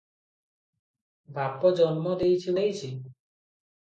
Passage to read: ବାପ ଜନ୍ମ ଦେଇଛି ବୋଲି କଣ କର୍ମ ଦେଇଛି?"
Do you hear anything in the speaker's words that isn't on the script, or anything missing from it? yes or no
yes